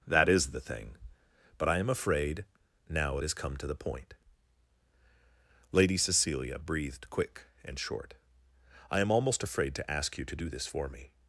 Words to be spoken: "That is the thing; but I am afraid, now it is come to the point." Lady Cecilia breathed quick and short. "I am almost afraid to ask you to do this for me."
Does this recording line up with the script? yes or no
no